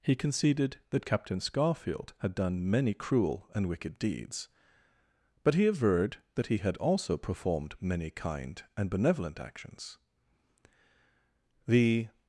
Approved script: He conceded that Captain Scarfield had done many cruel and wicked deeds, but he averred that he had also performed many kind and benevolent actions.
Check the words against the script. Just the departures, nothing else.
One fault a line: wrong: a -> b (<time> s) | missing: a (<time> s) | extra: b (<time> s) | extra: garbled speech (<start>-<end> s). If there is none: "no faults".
extra: The (11.7 s)